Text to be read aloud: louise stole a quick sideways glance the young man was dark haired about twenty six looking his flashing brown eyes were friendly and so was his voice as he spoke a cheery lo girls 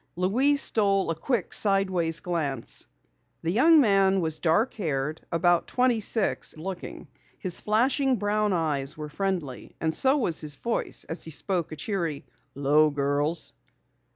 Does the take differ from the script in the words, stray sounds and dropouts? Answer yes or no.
no